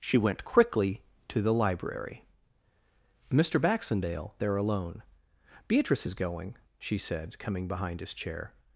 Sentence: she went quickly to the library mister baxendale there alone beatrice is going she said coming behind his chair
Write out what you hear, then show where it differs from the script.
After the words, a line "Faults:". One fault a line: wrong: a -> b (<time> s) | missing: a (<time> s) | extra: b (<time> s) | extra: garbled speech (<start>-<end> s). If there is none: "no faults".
she went quickly to the library mister baxendale there alone beatrice is going she said coming behind his chair
Faults:
no faults